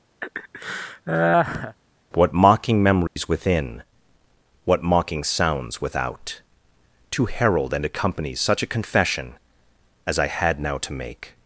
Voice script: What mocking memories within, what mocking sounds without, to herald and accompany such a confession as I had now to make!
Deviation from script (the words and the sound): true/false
true